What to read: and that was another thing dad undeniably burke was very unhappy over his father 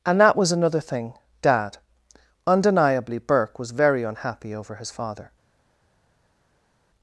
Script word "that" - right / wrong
right